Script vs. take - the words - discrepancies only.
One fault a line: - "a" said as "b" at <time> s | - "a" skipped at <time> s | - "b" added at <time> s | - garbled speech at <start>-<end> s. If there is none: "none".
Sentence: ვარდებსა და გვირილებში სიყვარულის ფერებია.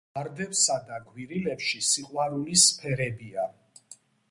none